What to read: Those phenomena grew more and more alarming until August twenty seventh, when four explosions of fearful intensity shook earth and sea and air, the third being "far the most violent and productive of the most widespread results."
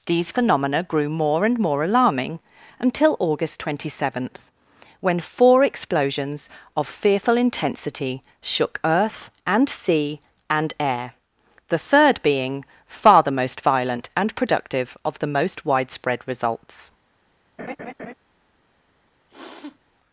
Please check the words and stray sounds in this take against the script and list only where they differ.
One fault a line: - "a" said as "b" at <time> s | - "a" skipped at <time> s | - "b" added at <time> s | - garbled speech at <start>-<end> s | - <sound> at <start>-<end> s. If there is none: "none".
- "Those" said as "These" at 0.1 s
- laugh at 17.6-18.1 s
- sniff at 19.3-19.8 s